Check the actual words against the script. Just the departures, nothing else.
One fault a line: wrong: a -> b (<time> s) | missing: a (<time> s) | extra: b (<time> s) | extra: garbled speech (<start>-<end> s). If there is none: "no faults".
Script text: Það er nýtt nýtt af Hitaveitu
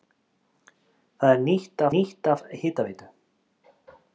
no faults